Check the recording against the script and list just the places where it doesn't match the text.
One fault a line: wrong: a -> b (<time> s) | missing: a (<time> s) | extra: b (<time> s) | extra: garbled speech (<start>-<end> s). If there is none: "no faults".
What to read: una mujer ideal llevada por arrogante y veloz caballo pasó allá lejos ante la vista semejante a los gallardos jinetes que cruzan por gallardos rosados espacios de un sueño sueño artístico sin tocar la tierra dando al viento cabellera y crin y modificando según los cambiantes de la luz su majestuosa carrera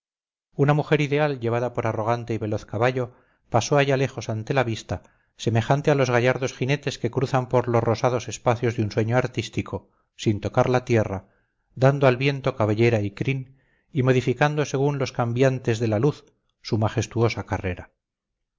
wrong: gallardos -> los (7.7 s)
missing: sueño (9.2 s)